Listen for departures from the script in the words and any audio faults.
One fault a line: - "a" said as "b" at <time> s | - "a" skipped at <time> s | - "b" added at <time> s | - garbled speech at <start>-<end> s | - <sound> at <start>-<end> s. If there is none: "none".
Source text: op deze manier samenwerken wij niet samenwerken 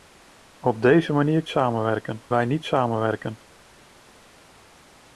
none